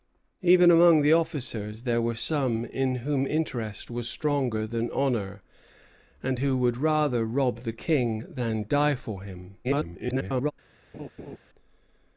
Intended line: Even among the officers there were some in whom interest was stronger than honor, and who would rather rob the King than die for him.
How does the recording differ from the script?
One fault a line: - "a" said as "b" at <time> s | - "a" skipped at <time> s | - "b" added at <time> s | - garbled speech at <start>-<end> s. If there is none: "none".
- garbled speech at 9.6-10.5 s